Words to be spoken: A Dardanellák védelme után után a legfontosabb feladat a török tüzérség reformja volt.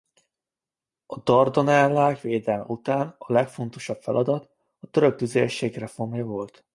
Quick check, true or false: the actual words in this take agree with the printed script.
false